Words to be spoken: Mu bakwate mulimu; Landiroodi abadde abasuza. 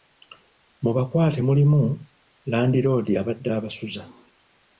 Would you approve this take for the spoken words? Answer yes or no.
yes